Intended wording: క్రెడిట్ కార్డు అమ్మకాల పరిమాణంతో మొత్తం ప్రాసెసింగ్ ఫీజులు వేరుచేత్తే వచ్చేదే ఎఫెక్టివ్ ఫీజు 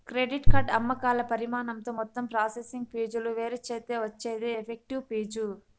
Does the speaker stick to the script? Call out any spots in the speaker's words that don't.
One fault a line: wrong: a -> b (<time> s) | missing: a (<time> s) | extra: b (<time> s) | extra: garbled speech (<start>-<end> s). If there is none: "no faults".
no faults